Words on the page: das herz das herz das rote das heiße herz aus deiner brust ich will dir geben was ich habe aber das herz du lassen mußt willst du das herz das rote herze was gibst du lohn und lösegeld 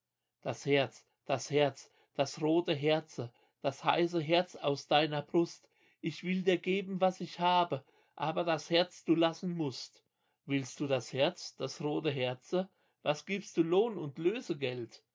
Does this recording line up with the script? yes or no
no